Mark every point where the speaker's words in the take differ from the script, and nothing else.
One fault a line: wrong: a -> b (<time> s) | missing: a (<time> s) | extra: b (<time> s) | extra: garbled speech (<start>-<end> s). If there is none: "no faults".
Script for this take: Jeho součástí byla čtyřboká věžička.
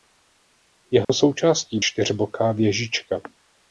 missing: byla (1.8 s)